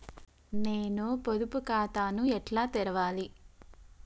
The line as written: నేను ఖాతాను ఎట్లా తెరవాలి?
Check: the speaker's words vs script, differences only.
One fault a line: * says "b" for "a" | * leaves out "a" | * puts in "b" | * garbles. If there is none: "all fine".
* puts in "పొదుపు"